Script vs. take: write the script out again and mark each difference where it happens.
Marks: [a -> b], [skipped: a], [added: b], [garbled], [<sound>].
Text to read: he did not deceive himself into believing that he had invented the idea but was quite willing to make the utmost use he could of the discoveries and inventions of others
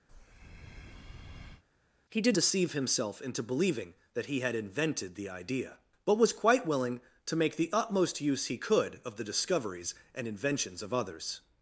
[breath] he did [skipped: not] deceive himself into believing that he had invented the idea but was quite willing to make the utmost use he could of the discoveries and inventions of others